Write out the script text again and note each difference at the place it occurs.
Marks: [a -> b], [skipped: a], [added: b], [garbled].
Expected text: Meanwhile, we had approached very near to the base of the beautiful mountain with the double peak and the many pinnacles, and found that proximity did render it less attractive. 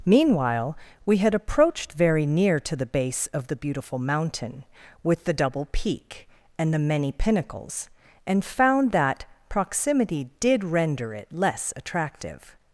Meanwhile, we had approached very near to the base of the beautiful mountain with the double peak and the many pinnacles, and found that proximity did render it less attractive.